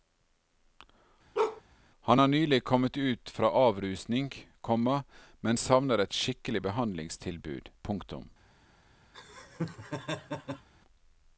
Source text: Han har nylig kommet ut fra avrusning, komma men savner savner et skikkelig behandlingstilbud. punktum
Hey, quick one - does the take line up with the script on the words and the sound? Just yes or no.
no